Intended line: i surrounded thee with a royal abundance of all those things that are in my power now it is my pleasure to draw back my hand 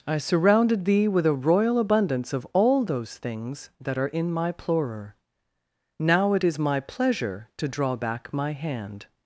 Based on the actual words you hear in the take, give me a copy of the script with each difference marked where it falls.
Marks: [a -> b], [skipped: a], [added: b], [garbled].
i surrounded thee with a royal abundance of all those things that are in my [power -> plorer] now it is my pleasure to draw back my hand